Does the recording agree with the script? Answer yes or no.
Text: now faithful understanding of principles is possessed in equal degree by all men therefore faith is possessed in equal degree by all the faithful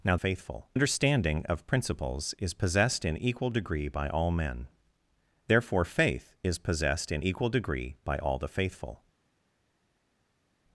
yes